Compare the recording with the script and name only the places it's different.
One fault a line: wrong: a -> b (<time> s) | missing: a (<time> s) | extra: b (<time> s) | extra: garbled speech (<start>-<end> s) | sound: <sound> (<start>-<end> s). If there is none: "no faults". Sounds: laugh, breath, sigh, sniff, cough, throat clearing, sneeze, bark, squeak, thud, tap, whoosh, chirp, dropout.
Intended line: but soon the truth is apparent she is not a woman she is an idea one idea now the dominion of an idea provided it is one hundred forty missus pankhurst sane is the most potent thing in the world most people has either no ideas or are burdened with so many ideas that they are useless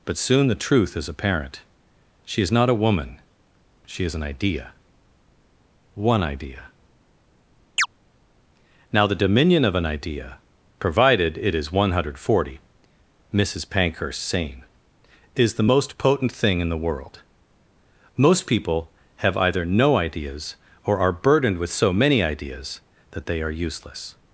sound: chirp (7.8-7.9 s)
wrong: has -> have (19.2 s)